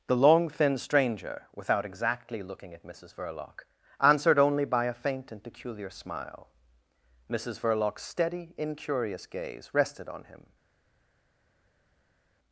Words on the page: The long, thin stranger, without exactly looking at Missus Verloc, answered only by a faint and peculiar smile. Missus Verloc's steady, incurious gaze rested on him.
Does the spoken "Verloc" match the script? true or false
true